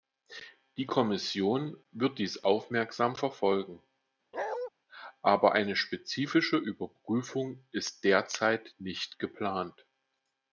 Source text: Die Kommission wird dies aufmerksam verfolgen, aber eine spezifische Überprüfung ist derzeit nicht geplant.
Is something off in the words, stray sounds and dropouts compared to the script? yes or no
yes